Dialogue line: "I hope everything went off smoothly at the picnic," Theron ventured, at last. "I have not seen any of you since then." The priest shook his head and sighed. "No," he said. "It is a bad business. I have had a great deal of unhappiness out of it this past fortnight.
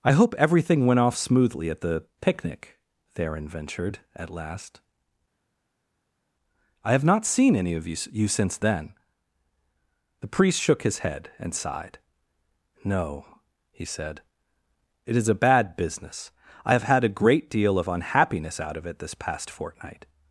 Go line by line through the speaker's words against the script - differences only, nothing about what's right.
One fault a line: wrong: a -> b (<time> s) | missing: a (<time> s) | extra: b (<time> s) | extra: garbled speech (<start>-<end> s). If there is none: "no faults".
extra: you (8.1 s)